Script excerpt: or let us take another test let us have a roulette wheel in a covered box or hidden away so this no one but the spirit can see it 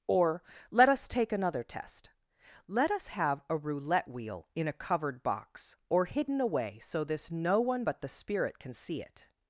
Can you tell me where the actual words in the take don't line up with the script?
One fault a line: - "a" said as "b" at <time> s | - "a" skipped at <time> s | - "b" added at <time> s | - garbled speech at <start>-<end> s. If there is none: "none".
none